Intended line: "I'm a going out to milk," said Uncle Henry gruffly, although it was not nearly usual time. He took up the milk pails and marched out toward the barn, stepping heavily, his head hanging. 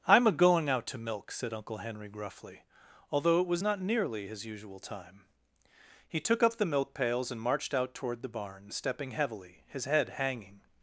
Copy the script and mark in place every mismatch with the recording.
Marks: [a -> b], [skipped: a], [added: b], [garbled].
"I'm a going out to milk," said Uncle Henry gruffly, although it was not nearly [added: his] usual time. He took up the milk pails and marched out toward the barn, stepping heavily, his head hanging.